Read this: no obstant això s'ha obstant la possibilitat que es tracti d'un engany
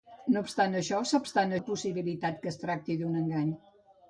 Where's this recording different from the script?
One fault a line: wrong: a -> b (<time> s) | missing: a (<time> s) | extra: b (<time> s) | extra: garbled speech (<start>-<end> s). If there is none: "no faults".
no faults